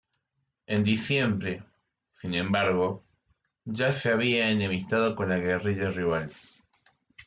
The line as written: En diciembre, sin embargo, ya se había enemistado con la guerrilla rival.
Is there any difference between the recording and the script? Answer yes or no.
no